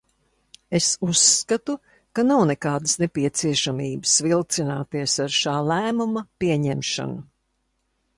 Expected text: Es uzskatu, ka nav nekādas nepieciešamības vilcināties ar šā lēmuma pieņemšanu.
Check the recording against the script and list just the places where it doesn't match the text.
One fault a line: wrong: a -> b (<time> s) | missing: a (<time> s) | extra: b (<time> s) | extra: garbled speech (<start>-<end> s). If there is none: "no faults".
no faults